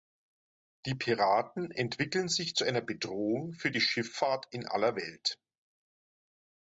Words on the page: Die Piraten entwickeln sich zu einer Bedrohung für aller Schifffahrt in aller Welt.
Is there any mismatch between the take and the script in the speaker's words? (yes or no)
yes